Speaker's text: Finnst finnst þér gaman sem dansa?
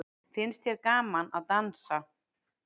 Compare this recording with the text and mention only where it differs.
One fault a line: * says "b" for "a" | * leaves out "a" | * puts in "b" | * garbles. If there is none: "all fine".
* leaves out "finnst"
* says "að" for "sem"